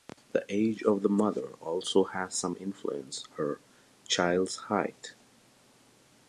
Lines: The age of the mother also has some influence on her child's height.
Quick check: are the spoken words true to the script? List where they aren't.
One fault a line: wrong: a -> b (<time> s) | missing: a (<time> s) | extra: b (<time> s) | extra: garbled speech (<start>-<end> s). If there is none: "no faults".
missing: on (3.2 s)